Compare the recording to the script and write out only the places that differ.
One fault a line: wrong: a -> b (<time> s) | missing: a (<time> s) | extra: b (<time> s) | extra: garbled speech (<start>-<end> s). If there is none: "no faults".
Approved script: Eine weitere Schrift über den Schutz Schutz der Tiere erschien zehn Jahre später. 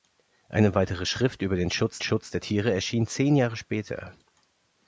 no faults